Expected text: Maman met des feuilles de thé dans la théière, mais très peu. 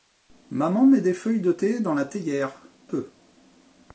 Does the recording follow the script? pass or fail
fail